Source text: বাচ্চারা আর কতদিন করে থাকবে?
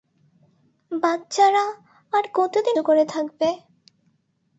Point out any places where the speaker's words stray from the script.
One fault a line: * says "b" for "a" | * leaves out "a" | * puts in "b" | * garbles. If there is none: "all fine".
all fine